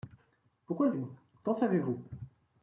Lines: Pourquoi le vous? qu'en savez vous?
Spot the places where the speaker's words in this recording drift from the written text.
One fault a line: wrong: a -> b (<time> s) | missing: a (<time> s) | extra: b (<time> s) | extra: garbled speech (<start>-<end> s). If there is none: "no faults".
no faults